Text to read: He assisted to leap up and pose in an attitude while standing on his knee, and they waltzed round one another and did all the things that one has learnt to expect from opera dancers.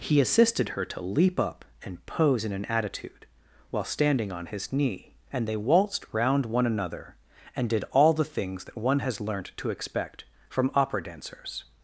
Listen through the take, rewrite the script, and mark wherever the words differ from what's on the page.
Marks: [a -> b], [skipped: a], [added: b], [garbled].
He assisted [added: her] to leap up and pose in an attitude while standing on his knee, and they waltzed round one another and did all the things that one has learnt to expect from opera dancers.